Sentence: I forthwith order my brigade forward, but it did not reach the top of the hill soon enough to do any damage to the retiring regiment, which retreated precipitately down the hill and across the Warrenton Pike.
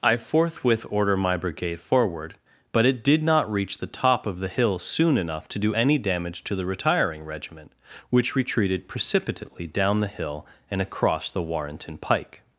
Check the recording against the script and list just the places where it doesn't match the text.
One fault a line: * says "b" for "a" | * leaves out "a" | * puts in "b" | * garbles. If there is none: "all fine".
all fine